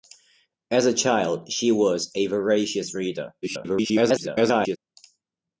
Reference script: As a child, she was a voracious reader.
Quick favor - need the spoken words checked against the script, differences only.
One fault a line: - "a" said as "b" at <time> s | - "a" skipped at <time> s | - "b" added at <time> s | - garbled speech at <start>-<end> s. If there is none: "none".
- garbled speech at 3.4-4.8 s